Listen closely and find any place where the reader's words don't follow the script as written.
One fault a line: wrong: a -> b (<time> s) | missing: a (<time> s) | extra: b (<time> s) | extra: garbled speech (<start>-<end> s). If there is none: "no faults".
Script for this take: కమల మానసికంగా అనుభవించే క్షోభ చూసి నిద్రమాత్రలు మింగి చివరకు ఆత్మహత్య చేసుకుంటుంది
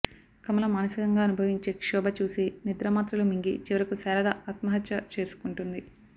extra: శారద (4.0 s)